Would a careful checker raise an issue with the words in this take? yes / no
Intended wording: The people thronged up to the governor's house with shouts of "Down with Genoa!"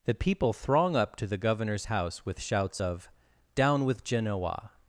yes